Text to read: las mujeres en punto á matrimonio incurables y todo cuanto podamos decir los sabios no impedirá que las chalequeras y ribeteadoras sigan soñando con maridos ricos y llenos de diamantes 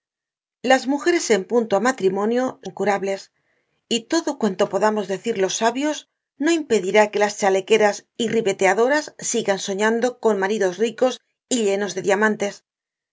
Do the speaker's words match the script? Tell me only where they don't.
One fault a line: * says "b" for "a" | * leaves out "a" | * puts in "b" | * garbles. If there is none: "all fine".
all fine